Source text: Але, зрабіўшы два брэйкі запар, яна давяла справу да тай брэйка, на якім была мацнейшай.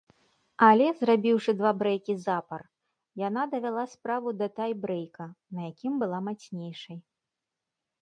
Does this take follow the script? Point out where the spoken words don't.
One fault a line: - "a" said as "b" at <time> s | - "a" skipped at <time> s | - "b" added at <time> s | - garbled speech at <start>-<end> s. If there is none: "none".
none